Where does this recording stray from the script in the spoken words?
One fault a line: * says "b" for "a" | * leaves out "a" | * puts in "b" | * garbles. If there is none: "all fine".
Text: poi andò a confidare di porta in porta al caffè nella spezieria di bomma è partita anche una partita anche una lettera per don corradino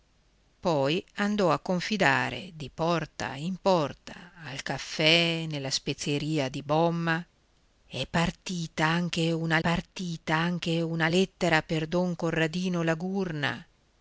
all fine